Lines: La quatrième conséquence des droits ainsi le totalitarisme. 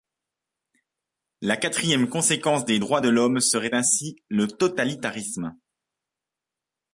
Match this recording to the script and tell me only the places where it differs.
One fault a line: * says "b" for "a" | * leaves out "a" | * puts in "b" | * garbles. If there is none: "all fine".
* puts in "de l'homme serait"